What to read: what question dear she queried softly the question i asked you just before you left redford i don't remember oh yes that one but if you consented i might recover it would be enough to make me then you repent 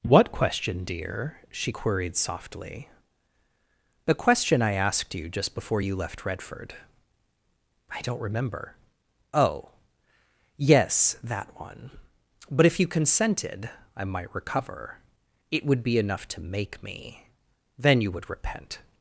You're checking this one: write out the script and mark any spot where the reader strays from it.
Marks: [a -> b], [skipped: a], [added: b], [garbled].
what question dear she queried softly the question i asked you just before you left redford i don't remember oh yes that one but if you consented i might recover it would be enough to make me then you [added: would] repent